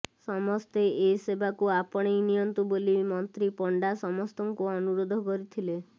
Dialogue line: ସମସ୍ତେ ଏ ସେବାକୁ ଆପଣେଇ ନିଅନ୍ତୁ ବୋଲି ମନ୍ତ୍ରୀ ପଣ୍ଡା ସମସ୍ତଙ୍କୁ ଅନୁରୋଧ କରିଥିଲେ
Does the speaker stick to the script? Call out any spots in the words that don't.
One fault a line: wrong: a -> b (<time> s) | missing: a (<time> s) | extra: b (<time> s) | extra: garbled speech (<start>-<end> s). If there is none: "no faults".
no faults